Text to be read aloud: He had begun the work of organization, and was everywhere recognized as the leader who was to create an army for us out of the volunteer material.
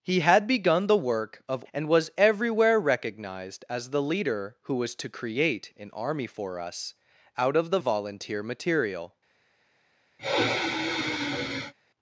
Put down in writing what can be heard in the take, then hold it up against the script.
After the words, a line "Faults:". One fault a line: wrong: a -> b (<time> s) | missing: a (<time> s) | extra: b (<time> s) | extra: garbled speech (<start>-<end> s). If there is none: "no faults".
He had begun the work of and was everywhere recognized as the leader who was to create an army for us out of the volunteer material.
Faults:
missing: organization (1.6 s)